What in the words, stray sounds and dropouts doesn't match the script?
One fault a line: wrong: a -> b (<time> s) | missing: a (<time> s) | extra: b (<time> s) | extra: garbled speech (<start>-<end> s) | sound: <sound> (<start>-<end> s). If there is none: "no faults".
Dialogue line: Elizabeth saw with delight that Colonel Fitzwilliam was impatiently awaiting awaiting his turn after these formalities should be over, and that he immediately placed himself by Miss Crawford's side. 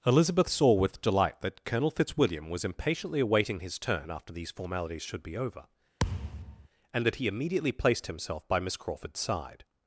missing: awaiting (3.6 s)
sound: thud (6.0-6.7 s)